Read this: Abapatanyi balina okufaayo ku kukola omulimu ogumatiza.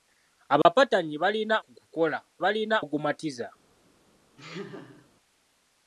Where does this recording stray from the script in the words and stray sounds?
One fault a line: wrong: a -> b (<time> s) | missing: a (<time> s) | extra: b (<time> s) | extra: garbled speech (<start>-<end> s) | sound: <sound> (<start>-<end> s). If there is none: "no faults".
sound: dropout (0.6-0.7 s)
missing: okufaayo (1.6 s)
wrong: omulimu -> balina (2.4 s)
sound: laugh (4.4-5.1 s)